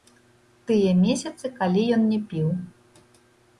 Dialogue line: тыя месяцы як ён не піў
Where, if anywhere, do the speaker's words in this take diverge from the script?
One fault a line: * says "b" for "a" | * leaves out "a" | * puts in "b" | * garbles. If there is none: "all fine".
* says "калі" for "як"